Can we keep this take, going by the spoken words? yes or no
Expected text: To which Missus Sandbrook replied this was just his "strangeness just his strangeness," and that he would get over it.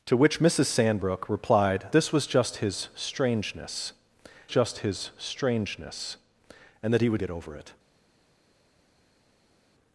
yes